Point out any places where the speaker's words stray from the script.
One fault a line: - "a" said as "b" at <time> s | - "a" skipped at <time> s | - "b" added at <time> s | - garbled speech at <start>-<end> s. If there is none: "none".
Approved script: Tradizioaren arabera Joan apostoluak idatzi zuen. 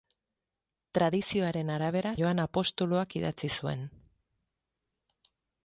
none